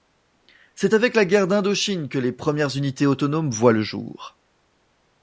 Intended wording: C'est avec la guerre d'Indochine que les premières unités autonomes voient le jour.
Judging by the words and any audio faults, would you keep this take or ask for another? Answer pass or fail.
pass